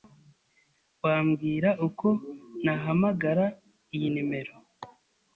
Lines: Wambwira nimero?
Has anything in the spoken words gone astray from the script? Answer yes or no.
yes